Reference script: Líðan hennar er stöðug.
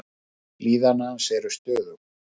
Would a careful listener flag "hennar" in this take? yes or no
yes